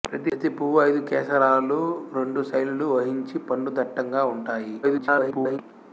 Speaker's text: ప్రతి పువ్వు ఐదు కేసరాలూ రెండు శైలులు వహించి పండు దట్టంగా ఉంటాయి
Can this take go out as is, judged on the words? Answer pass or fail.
fail